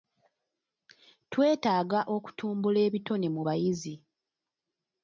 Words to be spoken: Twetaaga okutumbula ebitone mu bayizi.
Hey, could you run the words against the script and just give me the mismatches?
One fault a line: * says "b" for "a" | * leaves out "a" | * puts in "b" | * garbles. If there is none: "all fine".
all fine